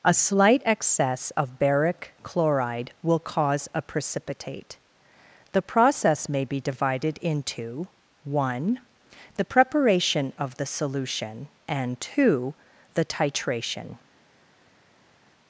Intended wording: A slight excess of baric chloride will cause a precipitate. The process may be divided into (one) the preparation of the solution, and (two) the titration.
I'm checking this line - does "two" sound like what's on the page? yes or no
yes